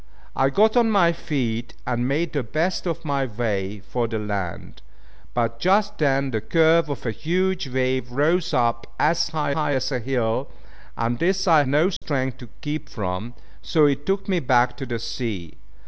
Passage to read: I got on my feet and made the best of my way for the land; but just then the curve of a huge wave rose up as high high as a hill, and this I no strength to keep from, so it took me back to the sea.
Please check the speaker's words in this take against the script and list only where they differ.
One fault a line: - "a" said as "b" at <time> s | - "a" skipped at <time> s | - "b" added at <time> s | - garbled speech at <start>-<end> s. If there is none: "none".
none